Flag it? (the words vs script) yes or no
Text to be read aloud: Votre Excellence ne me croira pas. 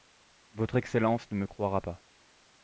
no